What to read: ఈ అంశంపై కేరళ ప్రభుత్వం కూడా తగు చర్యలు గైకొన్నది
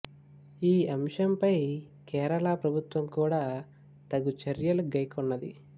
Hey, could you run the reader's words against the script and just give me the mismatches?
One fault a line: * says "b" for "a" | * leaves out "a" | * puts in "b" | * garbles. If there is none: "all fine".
all fine